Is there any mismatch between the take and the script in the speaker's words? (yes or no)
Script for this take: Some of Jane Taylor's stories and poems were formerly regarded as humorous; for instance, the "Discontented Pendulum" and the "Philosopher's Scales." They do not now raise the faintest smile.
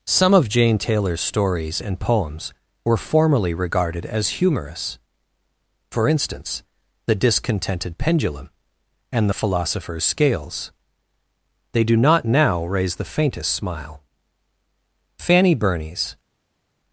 yes